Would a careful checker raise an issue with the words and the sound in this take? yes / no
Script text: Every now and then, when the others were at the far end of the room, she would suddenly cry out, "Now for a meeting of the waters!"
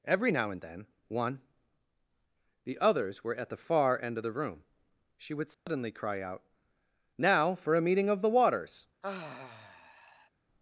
yes